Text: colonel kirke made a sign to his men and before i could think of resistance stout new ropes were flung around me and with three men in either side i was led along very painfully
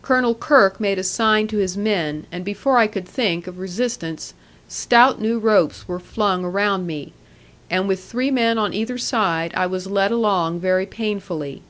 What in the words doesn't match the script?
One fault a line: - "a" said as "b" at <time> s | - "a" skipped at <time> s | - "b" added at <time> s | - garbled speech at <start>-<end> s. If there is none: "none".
- "in" said as "on" at 8.6 s